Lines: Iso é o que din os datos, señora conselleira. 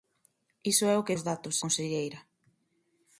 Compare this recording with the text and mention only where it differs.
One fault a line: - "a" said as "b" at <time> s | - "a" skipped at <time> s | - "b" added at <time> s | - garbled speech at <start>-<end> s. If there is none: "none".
- "din" skipped at 1.2 s
- "señora" skipped at 1.6 s